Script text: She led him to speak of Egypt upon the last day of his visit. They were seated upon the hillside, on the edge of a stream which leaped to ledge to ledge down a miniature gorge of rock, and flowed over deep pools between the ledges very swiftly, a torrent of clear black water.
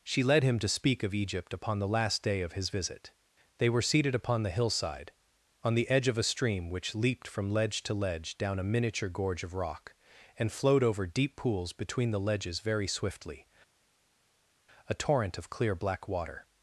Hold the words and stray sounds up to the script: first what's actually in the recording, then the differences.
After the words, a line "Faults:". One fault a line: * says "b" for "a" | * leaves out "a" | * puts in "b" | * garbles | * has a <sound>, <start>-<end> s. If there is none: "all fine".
She led him to speak of Egypt upon the last day of his visit. They were seated upon the hillside, on the edge of a stream which leaped from ledge to ledge down a miniature gorge of rock, and flowed over deep pools between the ledges very swiftly, a torrent of clear black water.
Faults:
* says "from" for "to"